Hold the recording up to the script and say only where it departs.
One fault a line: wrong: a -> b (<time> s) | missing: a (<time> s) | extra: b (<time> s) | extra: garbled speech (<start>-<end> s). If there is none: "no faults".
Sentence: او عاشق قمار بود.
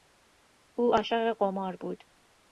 no faults